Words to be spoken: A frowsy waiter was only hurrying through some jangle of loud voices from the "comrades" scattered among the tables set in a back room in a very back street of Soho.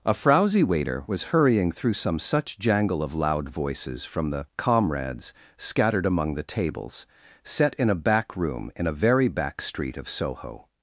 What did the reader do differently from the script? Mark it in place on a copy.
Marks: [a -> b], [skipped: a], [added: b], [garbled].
A frowsy waiter was [skipped: only] hurrying through some [added: such] jangle of loud voices from the "comrades" scattered among the tables set in a back room in a very back street of Soho.